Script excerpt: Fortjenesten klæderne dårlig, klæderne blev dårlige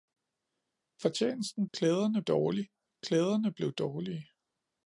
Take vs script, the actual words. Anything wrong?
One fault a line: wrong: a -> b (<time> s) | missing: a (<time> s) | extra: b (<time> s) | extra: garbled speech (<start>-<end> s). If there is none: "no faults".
no faults